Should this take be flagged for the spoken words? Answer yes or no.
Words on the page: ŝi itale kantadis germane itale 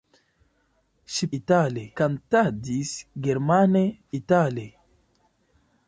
no